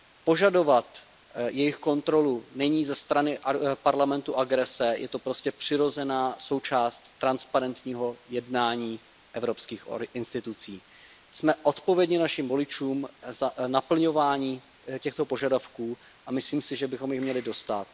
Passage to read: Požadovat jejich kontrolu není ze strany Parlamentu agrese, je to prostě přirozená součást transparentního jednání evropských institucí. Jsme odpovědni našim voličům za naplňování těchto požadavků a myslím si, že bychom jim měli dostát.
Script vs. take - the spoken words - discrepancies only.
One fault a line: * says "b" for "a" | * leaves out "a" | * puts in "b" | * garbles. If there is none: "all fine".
all fine